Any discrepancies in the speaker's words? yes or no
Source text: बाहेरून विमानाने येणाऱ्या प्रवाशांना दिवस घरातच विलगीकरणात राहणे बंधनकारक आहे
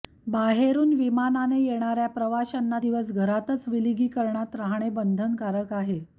no